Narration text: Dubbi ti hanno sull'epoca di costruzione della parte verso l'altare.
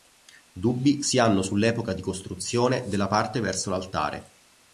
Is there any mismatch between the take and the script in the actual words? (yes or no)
yes